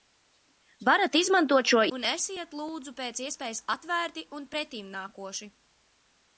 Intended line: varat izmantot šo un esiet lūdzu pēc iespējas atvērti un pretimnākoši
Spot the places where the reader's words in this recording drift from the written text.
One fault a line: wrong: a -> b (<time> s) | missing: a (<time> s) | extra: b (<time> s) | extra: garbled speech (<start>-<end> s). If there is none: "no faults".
no faults